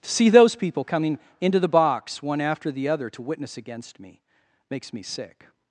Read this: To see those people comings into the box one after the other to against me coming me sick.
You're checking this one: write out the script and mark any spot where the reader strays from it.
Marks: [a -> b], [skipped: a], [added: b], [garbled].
To see those people [comings -> coming] into the box one after the other to [added: witness] against me [coming -> makes] me sick.